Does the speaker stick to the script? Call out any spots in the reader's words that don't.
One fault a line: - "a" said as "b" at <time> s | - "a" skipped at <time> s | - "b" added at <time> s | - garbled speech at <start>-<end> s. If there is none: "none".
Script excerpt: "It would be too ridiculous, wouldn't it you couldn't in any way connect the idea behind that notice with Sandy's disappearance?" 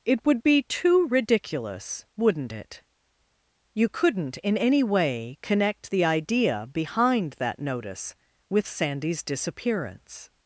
none